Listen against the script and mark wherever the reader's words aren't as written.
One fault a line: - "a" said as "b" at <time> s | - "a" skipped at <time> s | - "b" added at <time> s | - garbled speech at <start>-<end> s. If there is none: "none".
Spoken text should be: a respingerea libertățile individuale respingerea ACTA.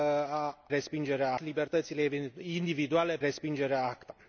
none